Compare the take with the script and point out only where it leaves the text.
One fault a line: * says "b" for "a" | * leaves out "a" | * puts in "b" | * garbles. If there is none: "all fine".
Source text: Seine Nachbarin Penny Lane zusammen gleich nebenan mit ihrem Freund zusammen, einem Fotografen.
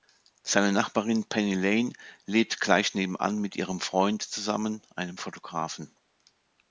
* says "lebt" for "zusammen"